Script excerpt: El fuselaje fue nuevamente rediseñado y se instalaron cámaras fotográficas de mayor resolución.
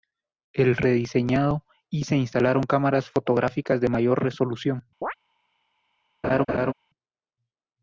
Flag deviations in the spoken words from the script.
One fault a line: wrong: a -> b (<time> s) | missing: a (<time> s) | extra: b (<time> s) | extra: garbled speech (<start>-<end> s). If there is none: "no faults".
missing: fuselaje fue nuevamente (0.8 s)